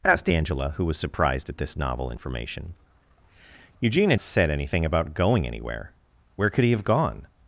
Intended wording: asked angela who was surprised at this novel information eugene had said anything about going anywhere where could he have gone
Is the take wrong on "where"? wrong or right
right